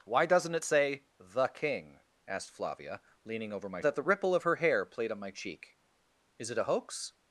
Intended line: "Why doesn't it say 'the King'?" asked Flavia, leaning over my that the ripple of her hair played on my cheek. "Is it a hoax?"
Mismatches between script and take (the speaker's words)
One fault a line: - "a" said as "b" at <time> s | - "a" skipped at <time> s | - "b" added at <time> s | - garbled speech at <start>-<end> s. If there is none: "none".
none